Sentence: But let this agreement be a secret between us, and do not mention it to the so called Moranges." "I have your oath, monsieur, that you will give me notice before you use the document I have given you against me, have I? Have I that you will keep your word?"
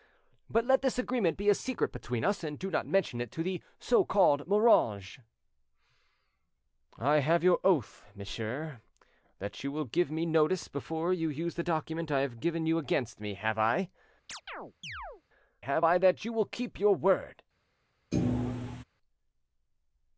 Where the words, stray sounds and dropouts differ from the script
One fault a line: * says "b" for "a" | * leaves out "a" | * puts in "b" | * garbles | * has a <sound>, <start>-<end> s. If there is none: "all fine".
* has a chirp, 14.3-15.2 s
* has a thud, 18.1-18.8 s